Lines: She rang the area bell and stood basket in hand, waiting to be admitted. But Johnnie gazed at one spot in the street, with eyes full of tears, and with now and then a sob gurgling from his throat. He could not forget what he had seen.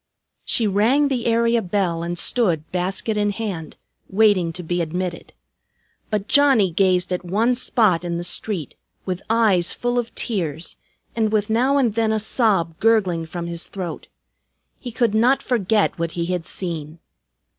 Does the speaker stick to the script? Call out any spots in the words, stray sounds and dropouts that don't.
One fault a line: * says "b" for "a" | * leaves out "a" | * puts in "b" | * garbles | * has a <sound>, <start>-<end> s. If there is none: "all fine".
all fine